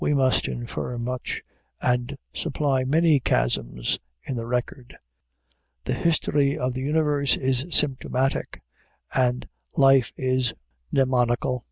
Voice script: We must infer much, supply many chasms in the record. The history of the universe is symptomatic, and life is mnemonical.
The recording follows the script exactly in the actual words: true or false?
false